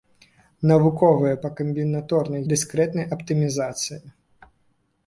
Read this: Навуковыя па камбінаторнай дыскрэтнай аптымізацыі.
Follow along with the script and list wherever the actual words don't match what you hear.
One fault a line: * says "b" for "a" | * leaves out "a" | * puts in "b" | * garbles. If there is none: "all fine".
all fine